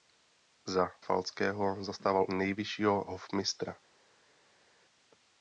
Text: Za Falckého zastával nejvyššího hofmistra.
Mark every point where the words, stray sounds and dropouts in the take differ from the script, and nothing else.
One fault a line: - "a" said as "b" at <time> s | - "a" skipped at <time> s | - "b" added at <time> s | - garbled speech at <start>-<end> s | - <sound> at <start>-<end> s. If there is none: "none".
none